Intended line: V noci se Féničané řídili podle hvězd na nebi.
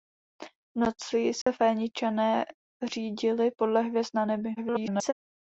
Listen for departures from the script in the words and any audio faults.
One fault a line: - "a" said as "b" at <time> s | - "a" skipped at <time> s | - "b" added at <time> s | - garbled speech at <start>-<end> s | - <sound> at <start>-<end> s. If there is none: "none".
- dropout at 1.4-1.5 s
- garbled speech at 4.6-5.1 s